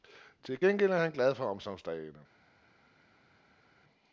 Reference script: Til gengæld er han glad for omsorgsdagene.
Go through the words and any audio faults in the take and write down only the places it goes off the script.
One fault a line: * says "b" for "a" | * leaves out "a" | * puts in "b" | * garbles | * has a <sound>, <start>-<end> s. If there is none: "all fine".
all fine